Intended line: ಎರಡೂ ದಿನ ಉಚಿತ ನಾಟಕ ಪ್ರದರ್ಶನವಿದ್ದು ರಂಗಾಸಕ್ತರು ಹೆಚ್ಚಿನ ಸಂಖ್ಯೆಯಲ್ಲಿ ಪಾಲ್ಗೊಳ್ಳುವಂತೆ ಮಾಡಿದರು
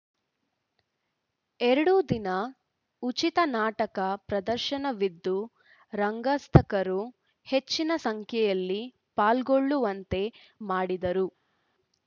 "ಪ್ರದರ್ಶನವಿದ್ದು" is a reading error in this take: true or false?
false